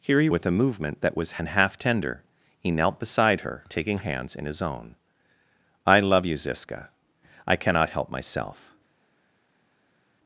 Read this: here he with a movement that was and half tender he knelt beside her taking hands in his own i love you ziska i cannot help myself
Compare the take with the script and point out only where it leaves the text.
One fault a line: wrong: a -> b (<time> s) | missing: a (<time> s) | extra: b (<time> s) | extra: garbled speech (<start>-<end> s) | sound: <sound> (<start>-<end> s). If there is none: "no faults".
no faults